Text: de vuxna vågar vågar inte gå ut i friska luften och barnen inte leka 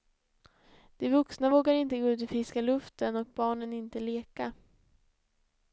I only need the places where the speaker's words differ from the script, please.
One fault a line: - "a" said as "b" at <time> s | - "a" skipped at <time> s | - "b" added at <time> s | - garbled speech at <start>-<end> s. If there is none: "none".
- "vågar" skipped at 1.7 s